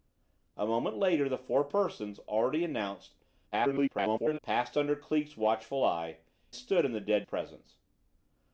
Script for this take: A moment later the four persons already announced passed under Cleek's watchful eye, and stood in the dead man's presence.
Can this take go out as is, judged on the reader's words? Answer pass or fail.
fail